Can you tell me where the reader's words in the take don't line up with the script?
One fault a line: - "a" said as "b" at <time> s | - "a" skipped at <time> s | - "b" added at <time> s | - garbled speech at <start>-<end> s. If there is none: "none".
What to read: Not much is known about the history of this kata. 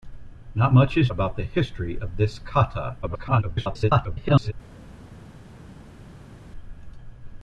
- "known" skipped at 1.1 s
- garbled speech at 3.0-4.5 s